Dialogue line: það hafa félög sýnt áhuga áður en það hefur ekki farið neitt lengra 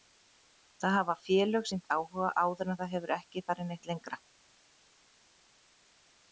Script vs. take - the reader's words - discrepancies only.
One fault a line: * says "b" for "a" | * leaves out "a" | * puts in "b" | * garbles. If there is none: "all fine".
all fine